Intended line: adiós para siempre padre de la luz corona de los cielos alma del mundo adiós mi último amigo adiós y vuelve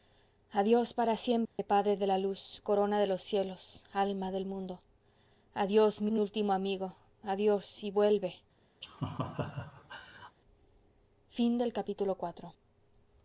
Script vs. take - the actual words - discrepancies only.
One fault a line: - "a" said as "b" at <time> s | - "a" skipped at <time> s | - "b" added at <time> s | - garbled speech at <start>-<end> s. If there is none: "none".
- "mi" added at 6.1 s